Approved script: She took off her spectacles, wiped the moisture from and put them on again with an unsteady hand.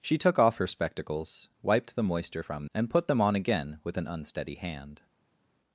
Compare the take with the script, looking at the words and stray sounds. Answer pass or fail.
pass